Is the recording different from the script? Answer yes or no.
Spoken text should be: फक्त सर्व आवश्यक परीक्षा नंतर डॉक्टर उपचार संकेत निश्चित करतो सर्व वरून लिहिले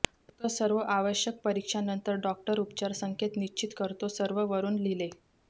no